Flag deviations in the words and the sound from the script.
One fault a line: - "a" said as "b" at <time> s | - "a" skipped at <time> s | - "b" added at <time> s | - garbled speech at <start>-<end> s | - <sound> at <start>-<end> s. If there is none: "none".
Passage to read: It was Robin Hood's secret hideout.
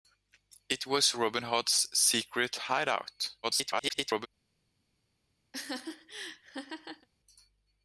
- garbled speech at 3.4-4.3 s
- laugh at 5.5-7.1 s